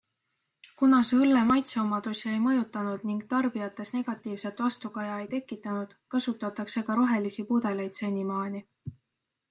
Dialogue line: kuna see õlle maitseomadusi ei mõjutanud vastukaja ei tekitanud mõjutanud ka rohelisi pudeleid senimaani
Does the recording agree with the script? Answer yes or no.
no